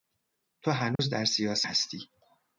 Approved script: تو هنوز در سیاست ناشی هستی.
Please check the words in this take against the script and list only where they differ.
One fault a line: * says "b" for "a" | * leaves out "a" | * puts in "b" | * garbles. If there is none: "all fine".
* leaves out "ناشی"